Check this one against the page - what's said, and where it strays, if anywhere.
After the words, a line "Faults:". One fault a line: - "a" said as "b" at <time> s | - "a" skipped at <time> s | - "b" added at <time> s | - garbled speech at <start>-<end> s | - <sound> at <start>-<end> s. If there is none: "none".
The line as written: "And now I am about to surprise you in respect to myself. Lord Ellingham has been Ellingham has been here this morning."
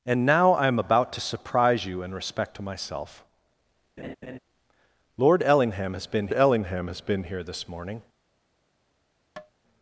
"And now I am about to surprise you in respect to myself. Lord Ellingham has been Ellingham has been here this morning."
Faults:
- laugh at 4.0-4.4 s
- tap at 9.4-9.5 s